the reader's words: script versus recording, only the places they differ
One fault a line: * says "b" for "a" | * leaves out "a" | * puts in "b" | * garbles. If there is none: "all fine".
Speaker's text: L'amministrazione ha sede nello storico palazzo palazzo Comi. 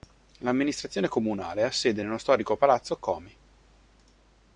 * puts in "comunale"
* leaves out "palazzo"